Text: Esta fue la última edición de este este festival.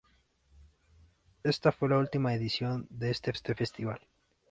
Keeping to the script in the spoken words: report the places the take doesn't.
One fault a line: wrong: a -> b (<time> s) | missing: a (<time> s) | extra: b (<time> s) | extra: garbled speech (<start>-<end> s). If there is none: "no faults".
no faults